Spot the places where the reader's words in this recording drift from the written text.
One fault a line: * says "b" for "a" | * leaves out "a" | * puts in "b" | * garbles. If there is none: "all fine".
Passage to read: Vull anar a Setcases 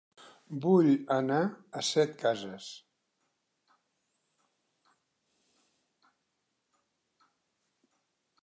all fine